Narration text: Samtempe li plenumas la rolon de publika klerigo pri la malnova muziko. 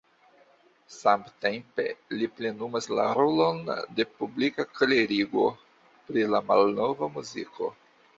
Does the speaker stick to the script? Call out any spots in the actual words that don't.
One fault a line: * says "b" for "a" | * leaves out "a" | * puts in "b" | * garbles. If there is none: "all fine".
all fine